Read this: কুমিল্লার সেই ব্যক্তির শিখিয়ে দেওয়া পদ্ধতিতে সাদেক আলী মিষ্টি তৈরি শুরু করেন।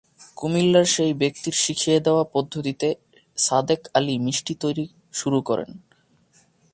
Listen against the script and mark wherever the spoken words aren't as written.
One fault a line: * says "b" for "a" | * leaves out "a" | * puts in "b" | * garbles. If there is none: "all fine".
all fine